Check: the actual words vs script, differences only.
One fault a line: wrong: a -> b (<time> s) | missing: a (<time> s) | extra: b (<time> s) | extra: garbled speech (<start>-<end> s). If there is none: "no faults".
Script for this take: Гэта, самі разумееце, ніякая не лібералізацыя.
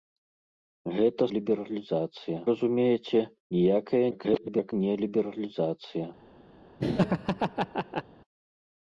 wrong: самі -> лібералізацыя (1.4 s)
extra: garbled speech (4.1-4.7 s)